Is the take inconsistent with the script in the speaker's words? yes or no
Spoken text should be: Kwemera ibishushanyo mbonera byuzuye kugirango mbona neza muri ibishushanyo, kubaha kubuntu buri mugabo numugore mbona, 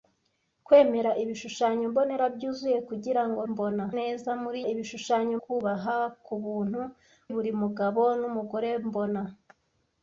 no